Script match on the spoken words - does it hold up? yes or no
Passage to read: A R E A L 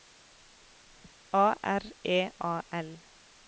yes